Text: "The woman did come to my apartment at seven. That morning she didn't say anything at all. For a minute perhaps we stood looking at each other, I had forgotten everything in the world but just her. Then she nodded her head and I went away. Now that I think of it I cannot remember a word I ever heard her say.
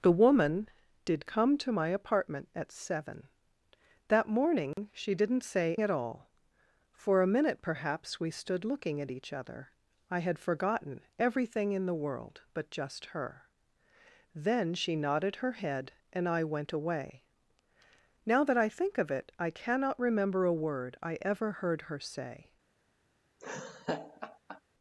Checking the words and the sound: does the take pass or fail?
fail